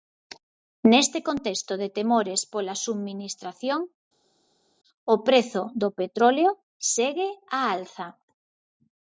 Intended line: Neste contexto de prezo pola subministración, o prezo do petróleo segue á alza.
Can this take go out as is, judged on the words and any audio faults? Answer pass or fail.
fail